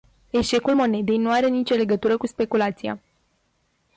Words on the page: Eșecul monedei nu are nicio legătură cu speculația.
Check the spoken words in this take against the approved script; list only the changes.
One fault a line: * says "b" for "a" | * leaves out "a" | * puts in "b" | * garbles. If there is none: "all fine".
all fine